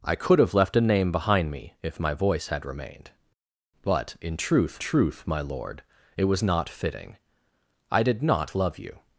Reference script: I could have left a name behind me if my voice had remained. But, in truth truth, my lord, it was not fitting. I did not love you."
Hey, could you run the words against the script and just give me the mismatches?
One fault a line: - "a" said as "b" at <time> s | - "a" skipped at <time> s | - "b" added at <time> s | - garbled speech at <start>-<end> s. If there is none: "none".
none